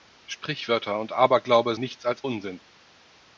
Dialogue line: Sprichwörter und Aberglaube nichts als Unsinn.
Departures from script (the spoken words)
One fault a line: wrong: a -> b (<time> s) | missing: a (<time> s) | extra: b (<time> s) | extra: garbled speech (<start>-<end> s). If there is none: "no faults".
no faults